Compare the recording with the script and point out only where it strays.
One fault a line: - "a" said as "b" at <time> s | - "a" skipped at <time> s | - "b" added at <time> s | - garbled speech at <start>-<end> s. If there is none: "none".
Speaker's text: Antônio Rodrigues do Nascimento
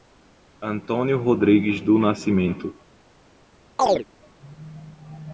none